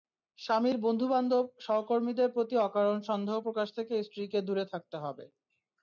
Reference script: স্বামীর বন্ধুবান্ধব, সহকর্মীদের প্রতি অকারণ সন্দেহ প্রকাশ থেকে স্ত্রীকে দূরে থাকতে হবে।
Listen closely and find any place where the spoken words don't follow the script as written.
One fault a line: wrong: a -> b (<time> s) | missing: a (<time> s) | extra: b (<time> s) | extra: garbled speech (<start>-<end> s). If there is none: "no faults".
no faults